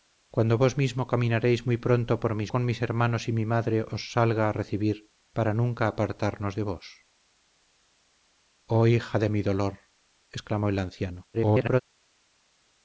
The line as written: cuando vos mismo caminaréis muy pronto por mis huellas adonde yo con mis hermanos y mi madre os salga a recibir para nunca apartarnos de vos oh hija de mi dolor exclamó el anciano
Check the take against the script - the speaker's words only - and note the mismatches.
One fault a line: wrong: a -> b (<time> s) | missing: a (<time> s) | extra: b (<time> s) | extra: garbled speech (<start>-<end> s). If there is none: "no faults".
missing: huellas adonde yo (2.5 s)
extra: garbled speech (11.3-11.8 s)